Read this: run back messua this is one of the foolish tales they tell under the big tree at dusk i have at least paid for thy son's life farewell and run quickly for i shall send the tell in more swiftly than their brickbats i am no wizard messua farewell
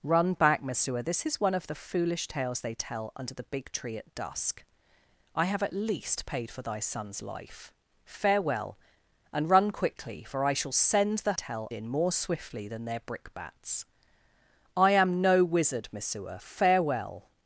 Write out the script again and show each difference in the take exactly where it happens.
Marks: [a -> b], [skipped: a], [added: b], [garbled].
run back messua this is one of the foolish tales they tell under the big tree at dusk i have at least paid for thy son's life farewell and run quickly for i shall send the tell in more swiftly than their brickbats i am no wizard messua farewell